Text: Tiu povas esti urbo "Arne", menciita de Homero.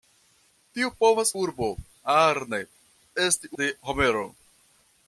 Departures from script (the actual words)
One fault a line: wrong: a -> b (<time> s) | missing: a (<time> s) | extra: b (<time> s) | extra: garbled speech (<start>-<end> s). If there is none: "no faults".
missing: esti (1.3 s)
wrong: menciita -> esti (3.2 s)